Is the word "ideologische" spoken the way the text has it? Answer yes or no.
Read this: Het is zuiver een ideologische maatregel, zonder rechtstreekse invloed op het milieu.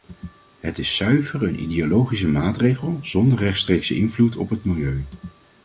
yes